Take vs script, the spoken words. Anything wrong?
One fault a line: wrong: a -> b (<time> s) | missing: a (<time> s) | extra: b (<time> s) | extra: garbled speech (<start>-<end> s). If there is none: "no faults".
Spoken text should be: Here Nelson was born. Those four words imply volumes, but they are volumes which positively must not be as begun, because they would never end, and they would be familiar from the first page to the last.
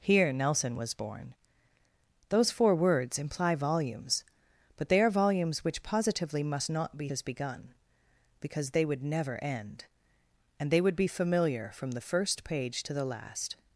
no faults